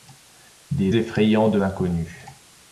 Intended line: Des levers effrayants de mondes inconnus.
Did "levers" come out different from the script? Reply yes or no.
yes